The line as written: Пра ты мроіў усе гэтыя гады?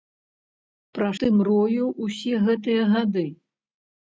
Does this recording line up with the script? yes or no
yes